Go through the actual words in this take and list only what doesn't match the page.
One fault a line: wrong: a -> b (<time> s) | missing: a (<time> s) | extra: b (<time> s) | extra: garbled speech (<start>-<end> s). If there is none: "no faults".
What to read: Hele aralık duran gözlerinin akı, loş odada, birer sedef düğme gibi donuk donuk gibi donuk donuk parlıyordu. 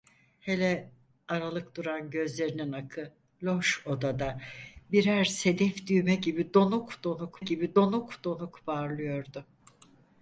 no faults